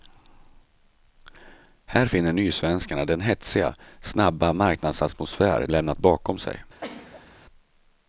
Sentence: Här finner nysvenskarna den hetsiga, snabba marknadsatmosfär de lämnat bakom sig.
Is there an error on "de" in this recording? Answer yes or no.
yes